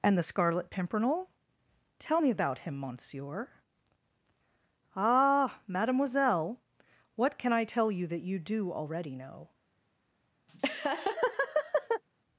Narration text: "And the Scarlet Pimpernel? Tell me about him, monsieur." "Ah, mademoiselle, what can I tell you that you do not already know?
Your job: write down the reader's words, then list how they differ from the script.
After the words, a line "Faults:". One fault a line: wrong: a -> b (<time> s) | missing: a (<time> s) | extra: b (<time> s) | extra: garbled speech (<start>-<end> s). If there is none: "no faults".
"And the Scarlet Pimpernel? Tell me about him, monsieur." "Ah, mademoiselle, what can I tell you that you do already know?
Faults:
missing: not (8.7 s)